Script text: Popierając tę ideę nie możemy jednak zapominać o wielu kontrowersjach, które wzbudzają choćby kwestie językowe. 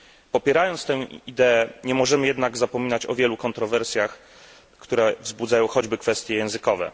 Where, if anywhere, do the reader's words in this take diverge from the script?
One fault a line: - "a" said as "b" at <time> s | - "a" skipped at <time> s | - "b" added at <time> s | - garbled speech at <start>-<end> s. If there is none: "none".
none